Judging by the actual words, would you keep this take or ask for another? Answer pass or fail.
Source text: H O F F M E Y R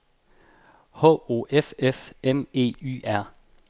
pass